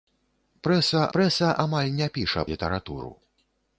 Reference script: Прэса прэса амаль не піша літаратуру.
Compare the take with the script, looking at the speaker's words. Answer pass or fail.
pass